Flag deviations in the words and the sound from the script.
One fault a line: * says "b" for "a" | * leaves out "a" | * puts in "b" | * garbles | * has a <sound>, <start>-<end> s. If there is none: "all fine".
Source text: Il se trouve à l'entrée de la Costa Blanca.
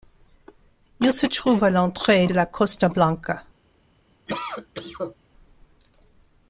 * has a cough, 4.3-5.2 s